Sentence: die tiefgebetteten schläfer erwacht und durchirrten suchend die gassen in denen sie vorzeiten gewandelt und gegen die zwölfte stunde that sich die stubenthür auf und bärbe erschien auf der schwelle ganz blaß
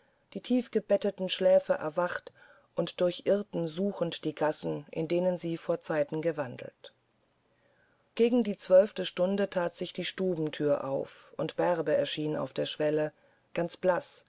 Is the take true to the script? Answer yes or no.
no